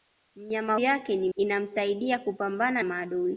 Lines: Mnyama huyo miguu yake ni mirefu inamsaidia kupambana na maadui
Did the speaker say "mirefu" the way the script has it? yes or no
no